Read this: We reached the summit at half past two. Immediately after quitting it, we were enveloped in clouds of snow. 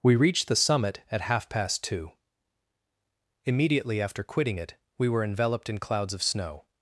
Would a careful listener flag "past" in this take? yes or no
no